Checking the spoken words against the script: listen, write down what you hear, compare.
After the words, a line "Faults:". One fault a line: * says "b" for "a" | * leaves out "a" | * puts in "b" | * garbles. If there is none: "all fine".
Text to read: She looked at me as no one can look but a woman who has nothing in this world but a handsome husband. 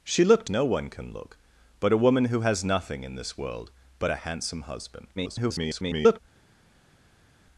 She looked no one can look but a woman who has nothing in this world but a handsome husband. [garbled]
Faults:
* leaves out "at me as"
* garbles